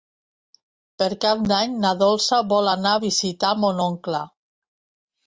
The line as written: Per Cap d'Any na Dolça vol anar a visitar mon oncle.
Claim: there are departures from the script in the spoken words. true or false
false